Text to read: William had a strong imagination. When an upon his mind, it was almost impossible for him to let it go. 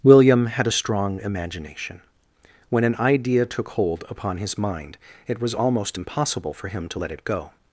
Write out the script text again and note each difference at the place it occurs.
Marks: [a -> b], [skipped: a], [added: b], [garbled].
William had a strong imagination. When an [added: idea took hold] upon his mind, it was almost impossible for him to let it go.